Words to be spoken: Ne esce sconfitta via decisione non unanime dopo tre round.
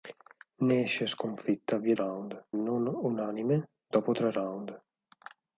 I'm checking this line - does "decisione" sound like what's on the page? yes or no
no